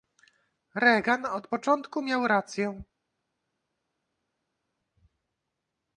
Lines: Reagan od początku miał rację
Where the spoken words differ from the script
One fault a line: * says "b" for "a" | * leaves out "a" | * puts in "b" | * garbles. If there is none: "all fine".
all fine